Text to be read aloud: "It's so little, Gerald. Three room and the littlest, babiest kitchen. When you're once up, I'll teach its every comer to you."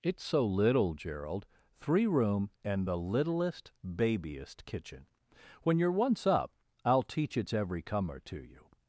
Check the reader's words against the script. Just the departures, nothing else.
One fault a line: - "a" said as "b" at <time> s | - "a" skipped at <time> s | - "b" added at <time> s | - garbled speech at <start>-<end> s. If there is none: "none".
none